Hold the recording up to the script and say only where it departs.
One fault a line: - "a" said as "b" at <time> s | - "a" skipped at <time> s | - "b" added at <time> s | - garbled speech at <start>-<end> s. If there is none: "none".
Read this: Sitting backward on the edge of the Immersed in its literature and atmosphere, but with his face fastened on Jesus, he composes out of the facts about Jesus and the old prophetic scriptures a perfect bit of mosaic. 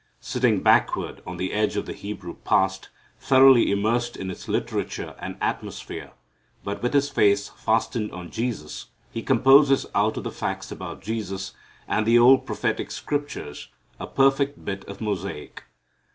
- "Hebrew past thoroughly" added at 1.9 s